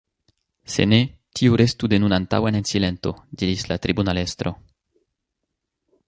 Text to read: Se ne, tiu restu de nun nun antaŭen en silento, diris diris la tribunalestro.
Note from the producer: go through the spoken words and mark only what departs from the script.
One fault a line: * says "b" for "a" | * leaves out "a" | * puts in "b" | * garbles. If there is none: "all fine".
* leaves out "nun"
* leaves out "diris"